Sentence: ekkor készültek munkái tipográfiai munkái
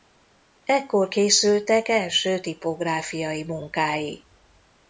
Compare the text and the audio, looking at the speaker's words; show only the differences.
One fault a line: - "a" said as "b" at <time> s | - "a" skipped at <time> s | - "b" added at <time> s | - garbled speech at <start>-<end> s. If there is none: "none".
- "munkái" said as "első" at 1.9 s